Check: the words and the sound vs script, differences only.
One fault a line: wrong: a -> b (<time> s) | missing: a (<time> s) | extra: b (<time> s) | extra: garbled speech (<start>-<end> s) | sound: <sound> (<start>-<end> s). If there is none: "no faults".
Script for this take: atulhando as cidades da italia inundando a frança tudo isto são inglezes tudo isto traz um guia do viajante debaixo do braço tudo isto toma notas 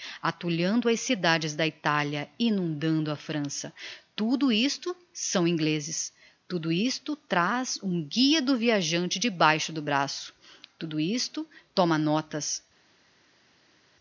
no faults